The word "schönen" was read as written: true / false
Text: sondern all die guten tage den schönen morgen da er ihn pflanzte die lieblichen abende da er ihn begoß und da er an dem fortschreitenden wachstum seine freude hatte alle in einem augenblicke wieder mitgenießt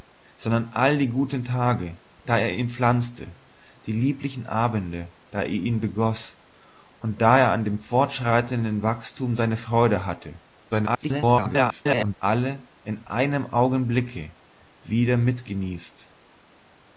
false